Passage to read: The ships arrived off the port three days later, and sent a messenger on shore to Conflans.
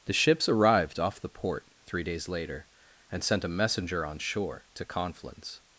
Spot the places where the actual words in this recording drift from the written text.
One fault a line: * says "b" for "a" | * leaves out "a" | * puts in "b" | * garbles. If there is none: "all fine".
all fine